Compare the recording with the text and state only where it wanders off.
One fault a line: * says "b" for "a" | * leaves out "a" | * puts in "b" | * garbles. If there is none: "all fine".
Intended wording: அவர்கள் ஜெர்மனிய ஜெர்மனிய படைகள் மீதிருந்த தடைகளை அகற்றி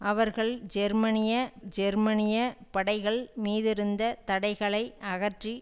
all fine